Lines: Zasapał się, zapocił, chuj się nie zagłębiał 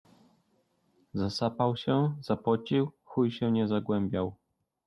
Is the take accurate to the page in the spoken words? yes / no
yes